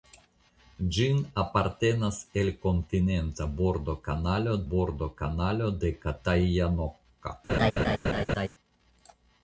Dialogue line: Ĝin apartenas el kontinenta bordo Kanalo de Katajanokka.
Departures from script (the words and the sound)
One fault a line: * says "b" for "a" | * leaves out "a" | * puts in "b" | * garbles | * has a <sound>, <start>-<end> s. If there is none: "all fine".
* puts in "bordo Kanalo"
* has a laugh, 7.5-8.5 s